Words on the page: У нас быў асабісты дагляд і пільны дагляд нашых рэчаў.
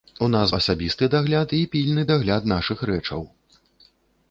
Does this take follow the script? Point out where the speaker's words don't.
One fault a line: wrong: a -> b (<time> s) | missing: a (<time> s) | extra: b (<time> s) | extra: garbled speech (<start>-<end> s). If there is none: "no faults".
missing: быў (0.5 s)